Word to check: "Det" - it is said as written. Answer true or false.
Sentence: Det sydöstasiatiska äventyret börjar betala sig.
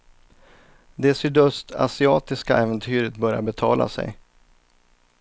true